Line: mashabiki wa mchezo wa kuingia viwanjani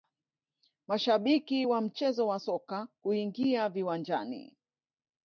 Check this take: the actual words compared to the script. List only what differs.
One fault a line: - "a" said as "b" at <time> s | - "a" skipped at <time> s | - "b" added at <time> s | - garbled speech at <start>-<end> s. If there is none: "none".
- "soka" added at 2.4 s